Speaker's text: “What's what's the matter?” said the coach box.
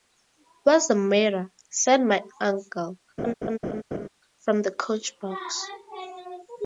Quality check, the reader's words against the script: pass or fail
fail